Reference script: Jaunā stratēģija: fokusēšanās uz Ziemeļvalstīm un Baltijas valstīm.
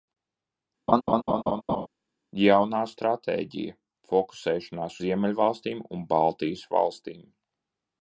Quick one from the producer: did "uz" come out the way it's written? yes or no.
no